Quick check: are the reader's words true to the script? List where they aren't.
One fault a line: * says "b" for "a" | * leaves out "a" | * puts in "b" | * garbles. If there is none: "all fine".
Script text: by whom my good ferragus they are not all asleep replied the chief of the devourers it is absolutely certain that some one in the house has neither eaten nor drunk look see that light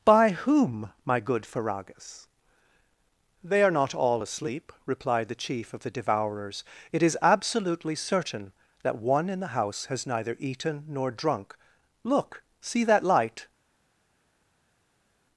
* leaves out "some"